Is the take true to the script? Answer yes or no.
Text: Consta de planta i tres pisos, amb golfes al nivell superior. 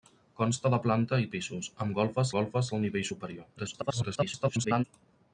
no